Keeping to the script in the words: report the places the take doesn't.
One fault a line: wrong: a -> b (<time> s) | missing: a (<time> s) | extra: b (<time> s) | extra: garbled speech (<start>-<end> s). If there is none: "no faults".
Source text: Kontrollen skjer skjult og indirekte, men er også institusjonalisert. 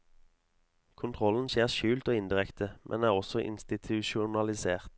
no faults